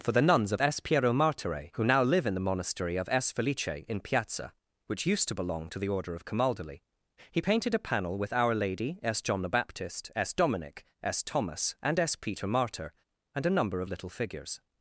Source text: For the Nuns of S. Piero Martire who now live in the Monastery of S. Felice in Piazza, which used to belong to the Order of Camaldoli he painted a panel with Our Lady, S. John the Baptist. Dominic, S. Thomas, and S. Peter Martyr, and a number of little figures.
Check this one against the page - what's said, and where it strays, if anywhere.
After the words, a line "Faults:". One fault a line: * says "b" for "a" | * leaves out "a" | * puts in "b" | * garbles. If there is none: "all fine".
For the Nuns of S. Piero Martire who now live in the Monastery of S. Felice in Piazza, which used to belong to the Order of Camaldoli he painted a panel with Our Lady, S. John the Baptist, S. Dominic, S. Thomas, and S. Peter Martyr, and a number of little figures.
Faults:
* puts in "S"